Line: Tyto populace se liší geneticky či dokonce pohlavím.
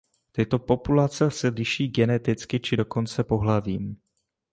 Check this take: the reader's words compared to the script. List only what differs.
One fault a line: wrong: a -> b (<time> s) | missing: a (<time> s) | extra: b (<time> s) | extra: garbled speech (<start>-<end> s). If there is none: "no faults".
no faults